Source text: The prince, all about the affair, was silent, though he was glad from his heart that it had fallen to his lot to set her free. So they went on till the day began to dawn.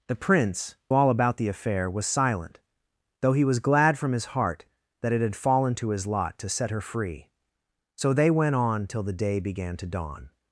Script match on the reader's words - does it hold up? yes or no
yes